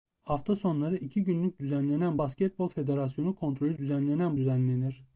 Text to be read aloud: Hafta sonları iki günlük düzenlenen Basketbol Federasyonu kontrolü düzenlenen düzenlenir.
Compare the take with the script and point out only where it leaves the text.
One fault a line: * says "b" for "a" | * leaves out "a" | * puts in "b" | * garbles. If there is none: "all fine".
all fine